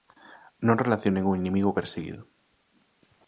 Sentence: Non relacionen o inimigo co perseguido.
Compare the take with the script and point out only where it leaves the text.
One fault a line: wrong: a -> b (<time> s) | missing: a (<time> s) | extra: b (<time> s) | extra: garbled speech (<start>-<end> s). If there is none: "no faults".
missing: co (1.8 s)